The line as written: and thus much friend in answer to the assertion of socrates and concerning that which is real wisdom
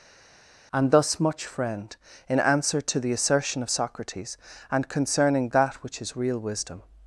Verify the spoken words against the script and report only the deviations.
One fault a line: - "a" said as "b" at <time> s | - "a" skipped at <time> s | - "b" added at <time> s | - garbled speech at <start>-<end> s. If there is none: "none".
none